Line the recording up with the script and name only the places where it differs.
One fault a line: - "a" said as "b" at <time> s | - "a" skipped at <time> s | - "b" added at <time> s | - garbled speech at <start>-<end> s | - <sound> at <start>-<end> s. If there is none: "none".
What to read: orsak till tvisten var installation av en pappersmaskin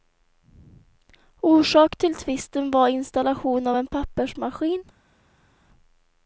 none